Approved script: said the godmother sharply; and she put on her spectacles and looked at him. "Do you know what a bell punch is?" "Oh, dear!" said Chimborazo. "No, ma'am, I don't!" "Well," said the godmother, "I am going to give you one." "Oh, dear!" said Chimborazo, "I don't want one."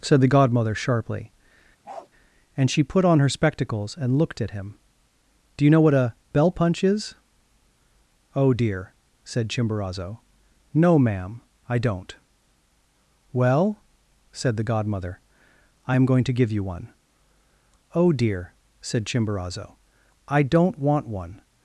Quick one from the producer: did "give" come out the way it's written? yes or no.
yes